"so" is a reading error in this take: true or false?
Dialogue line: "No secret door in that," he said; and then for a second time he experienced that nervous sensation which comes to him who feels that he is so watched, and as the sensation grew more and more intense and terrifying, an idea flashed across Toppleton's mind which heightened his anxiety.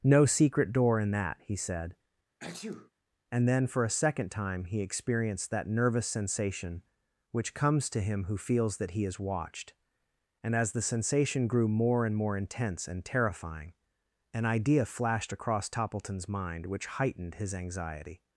true